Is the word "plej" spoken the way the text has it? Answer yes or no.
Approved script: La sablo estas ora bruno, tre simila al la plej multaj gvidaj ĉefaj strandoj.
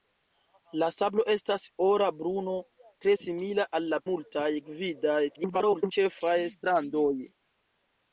no